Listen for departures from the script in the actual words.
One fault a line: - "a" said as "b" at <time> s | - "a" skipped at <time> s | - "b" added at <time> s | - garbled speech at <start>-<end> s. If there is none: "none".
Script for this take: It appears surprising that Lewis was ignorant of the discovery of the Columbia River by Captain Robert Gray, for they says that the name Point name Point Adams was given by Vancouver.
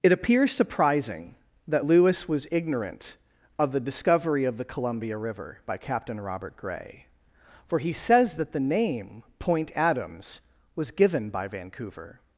- "they" said as "he" at 7.8 s
- "name Point" skipped at 9.7 s